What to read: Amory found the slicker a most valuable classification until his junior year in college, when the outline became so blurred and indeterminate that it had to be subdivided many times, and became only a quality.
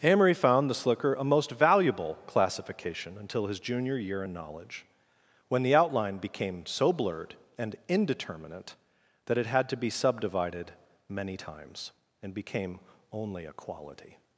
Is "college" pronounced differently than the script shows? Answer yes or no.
yes